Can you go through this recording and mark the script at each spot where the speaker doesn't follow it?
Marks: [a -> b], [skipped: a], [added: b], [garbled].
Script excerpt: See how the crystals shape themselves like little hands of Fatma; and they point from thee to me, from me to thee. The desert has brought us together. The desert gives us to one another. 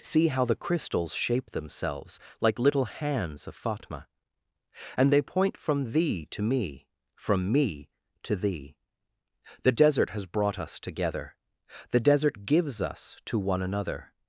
See how the crystals shape themselves like little hands of Fatma; and they point from thee to me, from me to thee. The desert has brought us together. The desert gives us to one another.